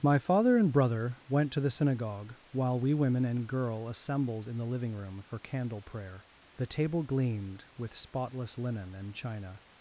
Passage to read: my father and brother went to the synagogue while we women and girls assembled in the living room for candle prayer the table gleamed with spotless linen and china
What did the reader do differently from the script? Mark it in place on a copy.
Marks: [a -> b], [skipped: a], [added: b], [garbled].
my father and brother went to the synagogue while we women and [girls -> girl] assembled in the living room for candle prayer the table gleamed with spotless linen and china